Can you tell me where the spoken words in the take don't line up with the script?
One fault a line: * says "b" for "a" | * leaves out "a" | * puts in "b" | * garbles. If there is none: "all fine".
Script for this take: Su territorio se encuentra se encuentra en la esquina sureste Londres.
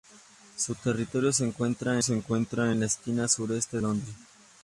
all fine